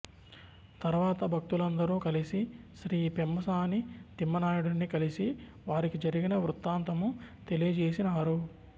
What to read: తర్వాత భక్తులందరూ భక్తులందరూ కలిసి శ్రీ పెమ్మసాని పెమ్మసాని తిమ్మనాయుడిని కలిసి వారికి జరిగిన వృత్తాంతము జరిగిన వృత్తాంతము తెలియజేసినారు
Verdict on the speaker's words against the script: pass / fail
fail